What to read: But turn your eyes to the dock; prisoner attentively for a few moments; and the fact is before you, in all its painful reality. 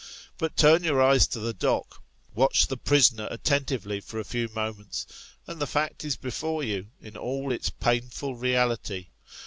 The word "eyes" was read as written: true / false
true